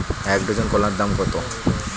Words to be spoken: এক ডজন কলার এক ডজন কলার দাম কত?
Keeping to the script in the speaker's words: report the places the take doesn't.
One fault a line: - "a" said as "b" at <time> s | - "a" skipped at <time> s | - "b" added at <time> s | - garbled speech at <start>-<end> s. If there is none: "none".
- "এক ডজন কলার" skipped at 0.9 s